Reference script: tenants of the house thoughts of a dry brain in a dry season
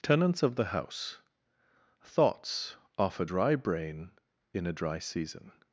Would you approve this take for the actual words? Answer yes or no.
no